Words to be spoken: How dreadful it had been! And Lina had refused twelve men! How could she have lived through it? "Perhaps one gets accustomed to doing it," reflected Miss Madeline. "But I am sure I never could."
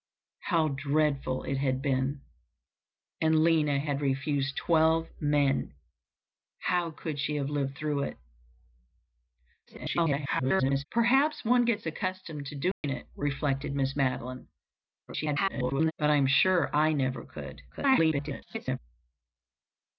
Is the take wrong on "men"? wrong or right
right